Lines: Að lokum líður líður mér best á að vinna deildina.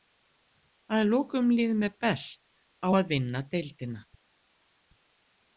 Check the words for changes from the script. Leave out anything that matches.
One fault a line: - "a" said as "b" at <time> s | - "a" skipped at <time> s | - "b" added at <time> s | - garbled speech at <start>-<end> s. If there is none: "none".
- "líður" skipped at 1.8 s